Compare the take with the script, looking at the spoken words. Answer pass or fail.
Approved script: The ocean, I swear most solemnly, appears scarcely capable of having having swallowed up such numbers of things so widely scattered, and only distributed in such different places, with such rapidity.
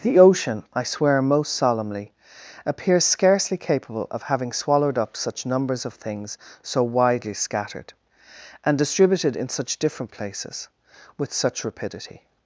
fail